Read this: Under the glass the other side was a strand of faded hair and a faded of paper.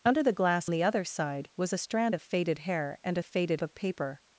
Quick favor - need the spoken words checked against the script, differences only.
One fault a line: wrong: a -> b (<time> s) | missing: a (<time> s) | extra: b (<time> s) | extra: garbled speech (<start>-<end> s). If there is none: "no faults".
no faults